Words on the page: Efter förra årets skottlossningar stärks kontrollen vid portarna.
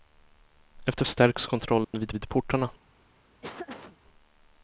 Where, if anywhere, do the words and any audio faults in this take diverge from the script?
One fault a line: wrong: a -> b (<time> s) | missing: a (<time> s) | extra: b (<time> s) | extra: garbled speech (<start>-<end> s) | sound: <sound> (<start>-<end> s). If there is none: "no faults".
missing: förra årets skottlossningar (1.1 s)
sound: dropout (1.8-1.9 s)
extra: vid (2.1 s)
sound: laugh (3.4-4.0 s)